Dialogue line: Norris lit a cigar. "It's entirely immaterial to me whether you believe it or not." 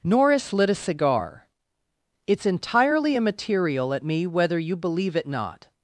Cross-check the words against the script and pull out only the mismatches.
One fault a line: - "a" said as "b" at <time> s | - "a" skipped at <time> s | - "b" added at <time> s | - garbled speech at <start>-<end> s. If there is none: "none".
- "to" said as "at" at 3.9 s
- "or" skipped at 5.3 s